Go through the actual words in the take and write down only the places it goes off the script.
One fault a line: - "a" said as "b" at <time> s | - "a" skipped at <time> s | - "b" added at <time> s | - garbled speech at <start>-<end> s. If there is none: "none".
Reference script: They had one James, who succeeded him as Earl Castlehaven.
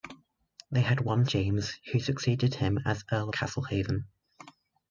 none